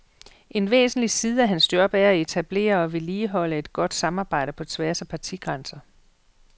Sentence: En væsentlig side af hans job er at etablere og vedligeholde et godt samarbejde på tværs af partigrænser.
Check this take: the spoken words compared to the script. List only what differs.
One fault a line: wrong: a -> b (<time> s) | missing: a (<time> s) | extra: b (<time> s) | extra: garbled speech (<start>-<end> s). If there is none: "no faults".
no faults